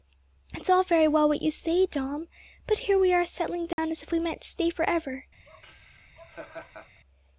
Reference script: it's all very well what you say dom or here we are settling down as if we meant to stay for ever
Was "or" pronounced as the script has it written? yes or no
no